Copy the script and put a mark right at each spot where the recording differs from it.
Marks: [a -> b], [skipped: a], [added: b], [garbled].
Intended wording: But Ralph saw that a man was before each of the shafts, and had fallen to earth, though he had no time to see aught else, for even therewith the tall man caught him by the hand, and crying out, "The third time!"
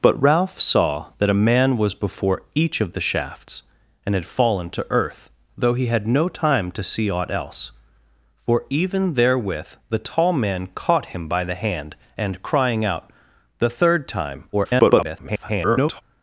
But Ralph saw that a man was before each of the shafts, and had fallen to earth, though he had no time to see aught else, for even therewith the tall man caught him by the hand, and crying out, "The third time!" [garbled]